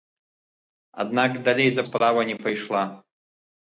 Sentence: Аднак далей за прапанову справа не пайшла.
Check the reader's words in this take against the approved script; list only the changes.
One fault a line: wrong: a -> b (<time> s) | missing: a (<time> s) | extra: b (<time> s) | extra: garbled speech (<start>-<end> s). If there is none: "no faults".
missing: прапанову (1.8 s)